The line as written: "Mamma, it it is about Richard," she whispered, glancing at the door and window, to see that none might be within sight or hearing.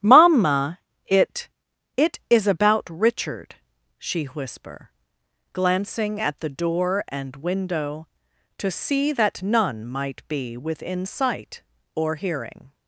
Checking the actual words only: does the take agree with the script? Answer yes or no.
no